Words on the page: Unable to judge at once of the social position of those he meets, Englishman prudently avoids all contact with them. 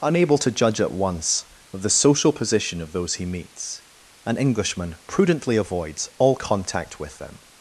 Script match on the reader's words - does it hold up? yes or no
no